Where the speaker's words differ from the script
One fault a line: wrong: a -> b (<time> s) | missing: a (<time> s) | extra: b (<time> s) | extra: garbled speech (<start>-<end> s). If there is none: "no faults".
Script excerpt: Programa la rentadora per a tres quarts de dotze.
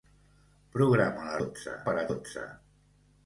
wrong: rentadora -> dotze (1.4 s)
missing: tres quarts de (2.1 s)